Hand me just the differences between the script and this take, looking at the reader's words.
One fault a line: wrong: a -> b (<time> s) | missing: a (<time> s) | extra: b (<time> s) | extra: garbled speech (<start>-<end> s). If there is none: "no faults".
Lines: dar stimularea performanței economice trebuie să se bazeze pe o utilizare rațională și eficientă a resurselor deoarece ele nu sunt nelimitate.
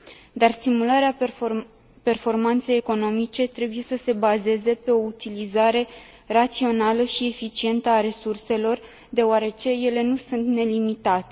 no faults